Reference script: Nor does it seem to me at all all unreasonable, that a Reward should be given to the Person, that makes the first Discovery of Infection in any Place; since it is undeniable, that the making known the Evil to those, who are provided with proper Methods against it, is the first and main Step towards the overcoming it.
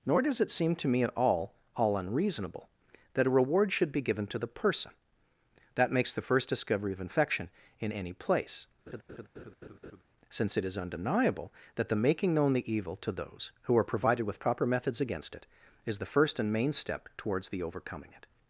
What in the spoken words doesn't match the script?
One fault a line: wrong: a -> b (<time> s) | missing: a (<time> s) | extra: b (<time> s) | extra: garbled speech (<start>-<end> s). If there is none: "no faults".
no faults